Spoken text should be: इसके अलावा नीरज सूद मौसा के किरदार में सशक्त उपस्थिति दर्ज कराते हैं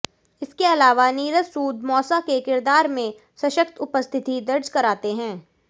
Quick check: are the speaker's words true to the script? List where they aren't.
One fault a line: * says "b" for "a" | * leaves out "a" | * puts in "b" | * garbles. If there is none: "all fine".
all fine